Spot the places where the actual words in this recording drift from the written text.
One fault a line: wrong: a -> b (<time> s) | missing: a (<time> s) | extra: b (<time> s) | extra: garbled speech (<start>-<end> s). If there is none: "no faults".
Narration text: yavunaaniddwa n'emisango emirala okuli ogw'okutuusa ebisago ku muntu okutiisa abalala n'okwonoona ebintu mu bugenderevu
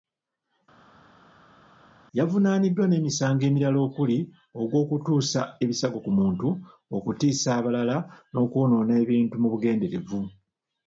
no faults